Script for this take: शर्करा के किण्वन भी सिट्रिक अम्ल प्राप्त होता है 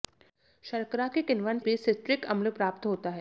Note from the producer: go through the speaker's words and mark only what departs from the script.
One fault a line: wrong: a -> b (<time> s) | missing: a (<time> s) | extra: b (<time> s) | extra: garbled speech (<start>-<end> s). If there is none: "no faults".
no faults